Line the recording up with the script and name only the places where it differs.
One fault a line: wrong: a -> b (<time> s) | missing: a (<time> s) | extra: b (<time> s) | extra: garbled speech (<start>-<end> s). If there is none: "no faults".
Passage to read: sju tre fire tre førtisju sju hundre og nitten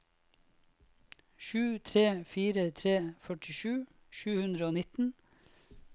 no faults